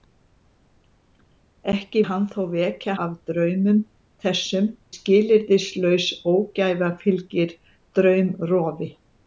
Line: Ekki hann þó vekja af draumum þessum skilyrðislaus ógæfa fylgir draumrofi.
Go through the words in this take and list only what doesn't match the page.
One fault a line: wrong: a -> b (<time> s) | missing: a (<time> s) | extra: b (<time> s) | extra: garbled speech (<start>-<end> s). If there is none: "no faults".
no faults